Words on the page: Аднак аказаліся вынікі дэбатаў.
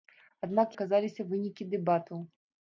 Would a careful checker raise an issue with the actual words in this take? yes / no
no